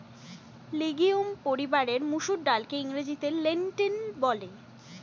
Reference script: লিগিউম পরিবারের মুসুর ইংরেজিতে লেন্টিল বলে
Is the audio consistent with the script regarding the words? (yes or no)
no